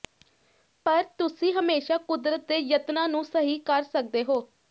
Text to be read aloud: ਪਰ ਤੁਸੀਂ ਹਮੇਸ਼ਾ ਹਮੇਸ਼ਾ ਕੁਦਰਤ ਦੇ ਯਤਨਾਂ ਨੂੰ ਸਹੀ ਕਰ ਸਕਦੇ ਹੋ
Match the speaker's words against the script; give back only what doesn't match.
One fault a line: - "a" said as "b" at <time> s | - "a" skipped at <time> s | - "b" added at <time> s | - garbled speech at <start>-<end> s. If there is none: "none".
- "ਹਮੇਸ਼ਾ" skipped at 2.0 s